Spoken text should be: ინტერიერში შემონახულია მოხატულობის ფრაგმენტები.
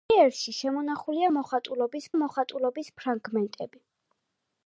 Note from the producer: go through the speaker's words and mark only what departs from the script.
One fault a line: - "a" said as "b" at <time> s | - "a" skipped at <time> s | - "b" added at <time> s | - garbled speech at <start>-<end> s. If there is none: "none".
- "მოხატულობის" added at 2.2 s